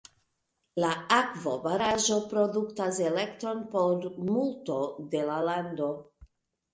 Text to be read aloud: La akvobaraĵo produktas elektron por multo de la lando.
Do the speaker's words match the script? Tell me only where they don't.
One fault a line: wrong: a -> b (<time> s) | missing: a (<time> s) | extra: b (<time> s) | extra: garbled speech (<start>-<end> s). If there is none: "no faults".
no faults